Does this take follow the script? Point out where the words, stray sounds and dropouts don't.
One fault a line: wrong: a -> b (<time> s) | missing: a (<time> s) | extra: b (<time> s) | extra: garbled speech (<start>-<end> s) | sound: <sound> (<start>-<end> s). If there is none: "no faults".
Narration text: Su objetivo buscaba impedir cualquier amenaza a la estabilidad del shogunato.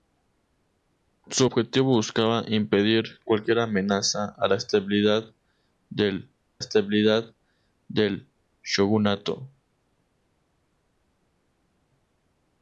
extra: estabilidad del (6.6 s)